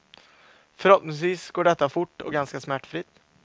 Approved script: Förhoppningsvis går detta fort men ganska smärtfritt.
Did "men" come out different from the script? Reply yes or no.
yes